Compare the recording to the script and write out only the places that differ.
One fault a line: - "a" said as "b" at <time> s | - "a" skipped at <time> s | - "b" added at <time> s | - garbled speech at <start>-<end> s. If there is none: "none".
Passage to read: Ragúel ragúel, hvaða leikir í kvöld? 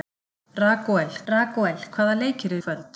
none